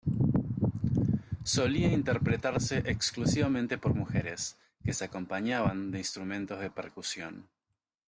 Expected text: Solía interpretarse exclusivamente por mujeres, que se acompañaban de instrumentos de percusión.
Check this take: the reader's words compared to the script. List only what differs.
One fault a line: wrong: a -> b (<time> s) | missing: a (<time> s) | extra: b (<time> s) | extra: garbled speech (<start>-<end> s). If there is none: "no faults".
no faults